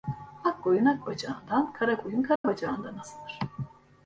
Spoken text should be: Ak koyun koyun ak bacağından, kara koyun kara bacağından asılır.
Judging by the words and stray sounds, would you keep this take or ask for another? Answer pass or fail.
fail